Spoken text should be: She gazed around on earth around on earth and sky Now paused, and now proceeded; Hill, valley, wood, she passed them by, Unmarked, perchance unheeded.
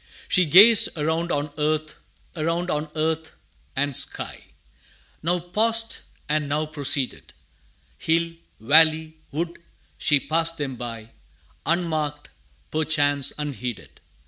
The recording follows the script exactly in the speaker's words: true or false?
true